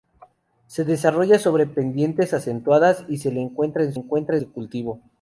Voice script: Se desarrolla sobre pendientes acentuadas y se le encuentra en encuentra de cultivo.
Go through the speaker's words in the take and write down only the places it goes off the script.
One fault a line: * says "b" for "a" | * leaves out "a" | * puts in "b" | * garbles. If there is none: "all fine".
all fine